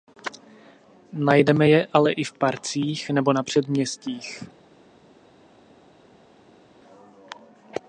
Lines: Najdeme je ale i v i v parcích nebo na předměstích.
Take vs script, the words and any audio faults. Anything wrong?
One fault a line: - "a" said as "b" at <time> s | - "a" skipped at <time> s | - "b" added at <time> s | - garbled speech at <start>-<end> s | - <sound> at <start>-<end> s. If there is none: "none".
- "i v" skipped at 2.3 s